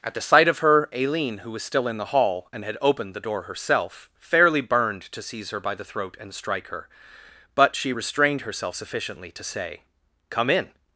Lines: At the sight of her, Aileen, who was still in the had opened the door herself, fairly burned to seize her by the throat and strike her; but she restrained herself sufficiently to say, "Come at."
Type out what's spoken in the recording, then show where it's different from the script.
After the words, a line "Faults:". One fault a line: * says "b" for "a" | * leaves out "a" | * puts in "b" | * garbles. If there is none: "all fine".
At the sight of her, Aileen, who was still in the hall and had opened the door herself, fairly burned to seize her by the throat and strike her; but she restrained herself sufficiently to say, "Come in."
Faults:
* puts in "hall and"
* says "in" for "at"